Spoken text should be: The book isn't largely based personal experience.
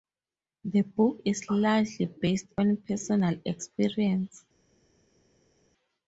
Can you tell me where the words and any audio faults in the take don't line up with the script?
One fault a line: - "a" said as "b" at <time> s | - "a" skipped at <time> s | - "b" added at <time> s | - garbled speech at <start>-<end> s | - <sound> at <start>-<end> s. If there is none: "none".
- "isn't" said as "is" at 1.2 s
- "on" added at 2.6 s